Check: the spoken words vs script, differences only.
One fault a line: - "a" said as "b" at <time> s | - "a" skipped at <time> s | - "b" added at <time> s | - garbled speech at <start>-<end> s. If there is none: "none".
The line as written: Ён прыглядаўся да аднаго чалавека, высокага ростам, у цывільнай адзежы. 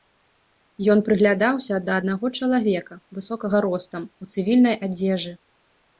none